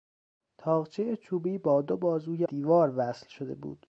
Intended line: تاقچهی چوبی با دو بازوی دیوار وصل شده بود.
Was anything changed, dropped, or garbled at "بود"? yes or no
no